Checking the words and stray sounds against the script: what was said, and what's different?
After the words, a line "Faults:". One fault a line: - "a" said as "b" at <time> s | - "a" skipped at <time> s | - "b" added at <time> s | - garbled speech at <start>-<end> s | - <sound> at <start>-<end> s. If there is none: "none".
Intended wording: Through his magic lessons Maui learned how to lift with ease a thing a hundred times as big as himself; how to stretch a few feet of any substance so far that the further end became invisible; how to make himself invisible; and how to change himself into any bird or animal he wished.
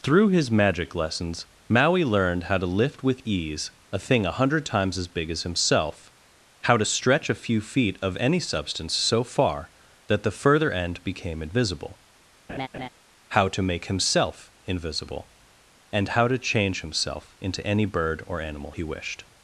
Through his magic lessons Maui learned how to lift with ease a thing a hundred times as big as himself; how to stretch a few feet of any substance so far that the further end became invisible; how to make himself invisible; and how to change himself into any bird or animal he wished.
Faults:
- laugh at 12.5-12.9 s